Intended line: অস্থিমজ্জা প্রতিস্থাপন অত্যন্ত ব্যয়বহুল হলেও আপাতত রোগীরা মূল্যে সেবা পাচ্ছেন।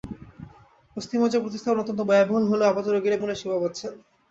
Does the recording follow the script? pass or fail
pass